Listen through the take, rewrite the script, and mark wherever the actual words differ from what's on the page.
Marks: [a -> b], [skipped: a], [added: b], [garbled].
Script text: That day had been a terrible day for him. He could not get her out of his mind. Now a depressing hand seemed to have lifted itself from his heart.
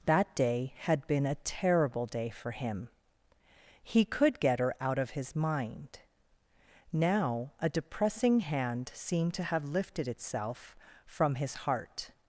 That day had been a terrible day for him. He could [skipped: not] get her out of his mind. Now a depressing hand seemed to have lifted itself from his heart.